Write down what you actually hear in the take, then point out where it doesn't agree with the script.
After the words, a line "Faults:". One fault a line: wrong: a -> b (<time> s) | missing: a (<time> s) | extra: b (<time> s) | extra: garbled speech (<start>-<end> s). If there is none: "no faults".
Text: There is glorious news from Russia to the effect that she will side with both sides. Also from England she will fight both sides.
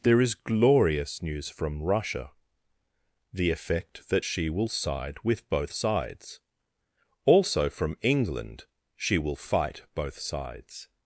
There is glorious news from Russia the effect that she will side with both sides. Also from England she will fight both sides.
Faults:
missing: to (2.3 s)